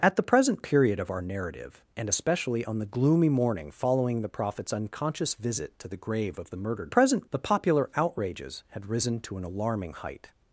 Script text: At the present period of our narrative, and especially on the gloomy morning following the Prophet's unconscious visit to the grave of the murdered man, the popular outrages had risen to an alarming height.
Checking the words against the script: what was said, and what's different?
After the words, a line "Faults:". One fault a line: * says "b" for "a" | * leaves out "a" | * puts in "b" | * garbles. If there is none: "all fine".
At the present period of our narrative, and especially on the gloomy morning following the Prophet's unconscious visit to the grave of the murdered present, the popular outrages had risen to an alarming height.
Faults:
* says "present" for "man"